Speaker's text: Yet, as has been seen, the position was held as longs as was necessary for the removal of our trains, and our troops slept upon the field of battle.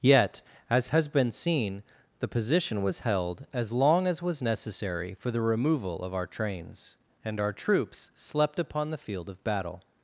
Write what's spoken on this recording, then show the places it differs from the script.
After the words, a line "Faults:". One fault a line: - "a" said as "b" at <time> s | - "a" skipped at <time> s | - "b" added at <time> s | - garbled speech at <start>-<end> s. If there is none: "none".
Yet, as has been seen, the position was held as long as was necessary for the removal of our trains, and our troops slept upon the field of battle.
Faults:
- "longs" said as "long" at 3.7 s